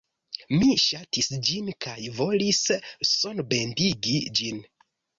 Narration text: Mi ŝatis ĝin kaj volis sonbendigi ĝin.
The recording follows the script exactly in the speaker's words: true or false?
true